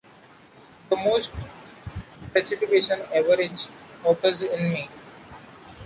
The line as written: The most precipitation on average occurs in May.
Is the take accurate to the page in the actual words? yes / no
no